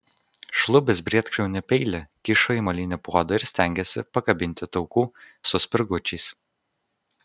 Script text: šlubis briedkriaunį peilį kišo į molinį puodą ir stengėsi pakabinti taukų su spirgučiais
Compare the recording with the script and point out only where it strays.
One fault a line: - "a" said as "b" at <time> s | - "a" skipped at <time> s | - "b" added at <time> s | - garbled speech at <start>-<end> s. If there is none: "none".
none